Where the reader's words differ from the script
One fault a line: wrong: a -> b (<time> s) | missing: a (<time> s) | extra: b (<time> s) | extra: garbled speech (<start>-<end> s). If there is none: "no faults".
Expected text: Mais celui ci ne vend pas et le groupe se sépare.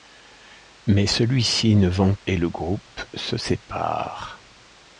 missing: pas (2.1 s)